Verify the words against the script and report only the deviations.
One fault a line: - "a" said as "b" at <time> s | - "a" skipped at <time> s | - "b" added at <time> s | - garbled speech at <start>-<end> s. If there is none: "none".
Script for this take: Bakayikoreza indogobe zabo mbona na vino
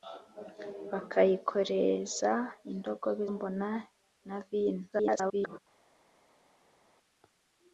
- "zabo" skipped at 3.2 s
- garbled speech at 4.9-5.6 s